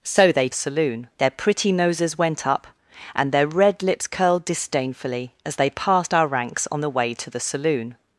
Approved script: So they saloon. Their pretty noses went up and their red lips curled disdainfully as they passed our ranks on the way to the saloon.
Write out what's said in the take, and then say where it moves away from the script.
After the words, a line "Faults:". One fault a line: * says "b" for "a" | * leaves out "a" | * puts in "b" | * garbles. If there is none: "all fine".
So they saloon. Their pretty noses went up and their red lips curled disdainfully as they passed our ranks on the way to the saloon.
Faults:
all fine